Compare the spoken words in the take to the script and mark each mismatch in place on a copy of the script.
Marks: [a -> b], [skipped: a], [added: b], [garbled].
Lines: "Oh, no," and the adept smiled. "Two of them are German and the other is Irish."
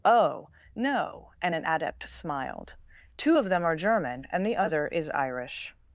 "Oh, no," and [the -> an] adept smiled. "Two of them are German and the other is Irish."